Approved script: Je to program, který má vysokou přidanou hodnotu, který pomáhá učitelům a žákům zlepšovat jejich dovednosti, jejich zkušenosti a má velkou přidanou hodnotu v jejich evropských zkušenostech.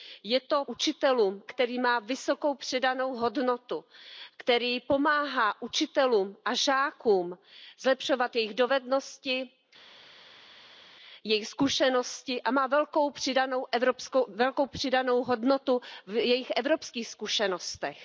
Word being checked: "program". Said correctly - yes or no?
no